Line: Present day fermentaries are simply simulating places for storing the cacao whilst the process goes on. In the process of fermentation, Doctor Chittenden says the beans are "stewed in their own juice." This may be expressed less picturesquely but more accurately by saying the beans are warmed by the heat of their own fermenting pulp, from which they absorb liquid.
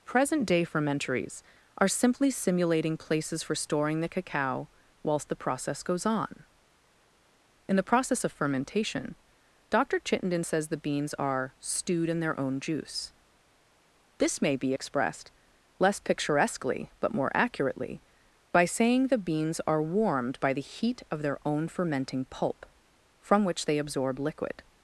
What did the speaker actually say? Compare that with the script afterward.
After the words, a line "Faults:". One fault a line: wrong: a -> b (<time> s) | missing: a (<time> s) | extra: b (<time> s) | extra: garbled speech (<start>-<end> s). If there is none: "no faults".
Present day fermentaries are simply simulating places for storing the cacao whilst the process goes on. In the process of fermentation, Doctor Chittenden says the beans are "stewed in their own juice." This may be expressed less picturesquely but more accurately by saying the beans are warmed by the heat of their own fermenting pulp, from which they absorb liquid.
Faults:
no faults